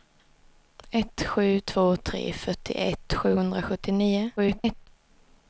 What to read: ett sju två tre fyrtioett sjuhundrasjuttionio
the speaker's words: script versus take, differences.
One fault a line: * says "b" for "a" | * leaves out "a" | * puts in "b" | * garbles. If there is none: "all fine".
* garbles